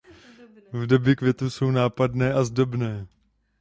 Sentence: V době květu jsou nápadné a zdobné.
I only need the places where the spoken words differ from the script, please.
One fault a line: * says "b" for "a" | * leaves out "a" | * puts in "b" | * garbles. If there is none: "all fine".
all fine